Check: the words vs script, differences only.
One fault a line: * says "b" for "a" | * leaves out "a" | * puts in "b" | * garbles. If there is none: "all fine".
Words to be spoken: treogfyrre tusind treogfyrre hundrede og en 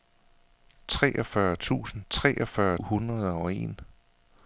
all fine